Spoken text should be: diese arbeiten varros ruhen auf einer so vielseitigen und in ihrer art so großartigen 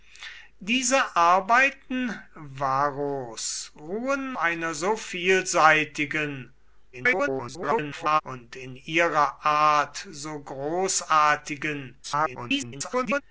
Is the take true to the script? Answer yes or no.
no